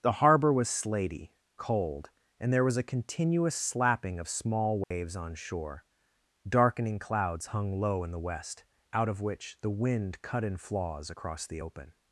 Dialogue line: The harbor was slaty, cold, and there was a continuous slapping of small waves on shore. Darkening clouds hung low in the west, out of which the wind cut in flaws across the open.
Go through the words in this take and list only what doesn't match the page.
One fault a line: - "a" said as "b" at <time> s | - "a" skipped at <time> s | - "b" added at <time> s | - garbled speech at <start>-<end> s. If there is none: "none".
none